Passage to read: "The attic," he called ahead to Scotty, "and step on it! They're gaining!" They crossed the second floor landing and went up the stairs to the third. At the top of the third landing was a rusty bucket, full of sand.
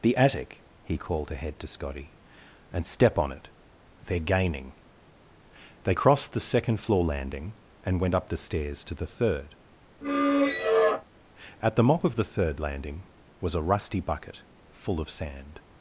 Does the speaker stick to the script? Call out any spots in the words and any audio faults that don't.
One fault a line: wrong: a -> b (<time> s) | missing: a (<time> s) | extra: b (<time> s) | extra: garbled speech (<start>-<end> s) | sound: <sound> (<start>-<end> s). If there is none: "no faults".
sound: squeak (10.0-11.0 s)
wrong: top -> mop (11.8 s)